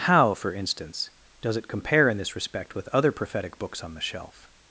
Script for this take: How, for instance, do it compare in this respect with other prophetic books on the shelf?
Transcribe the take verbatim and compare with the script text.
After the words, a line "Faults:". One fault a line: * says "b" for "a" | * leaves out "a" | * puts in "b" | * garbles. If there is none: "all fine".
How, for instance, does it compare in this respect with other prophetic books on the shelf?
Faults:
* says "does" for "do"